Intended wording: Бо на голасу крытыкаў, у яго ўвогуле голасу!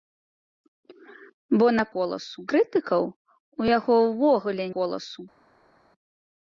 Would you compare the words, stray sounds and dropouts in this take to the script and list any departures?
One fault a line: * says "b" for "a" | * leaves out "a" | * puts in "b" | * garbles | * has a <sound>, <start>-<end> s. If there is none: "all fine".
all fine